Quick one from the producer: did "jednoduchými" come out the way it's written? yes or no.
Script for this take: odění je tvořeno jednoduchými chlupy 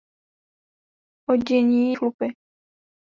no